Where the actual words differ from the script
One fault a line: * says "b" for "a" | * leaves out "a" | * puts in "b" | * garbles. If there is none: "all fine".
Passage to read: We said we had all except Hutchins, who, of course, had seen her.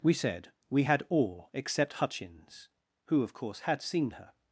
all fine